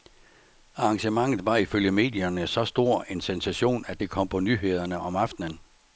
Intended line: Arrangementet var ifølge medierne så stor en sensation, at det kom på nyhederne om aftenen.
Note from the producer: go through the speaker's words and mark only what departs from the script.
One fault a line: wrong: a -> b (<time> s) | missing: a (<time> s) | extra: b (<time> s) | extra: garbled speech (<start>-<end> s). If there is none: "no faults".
no faults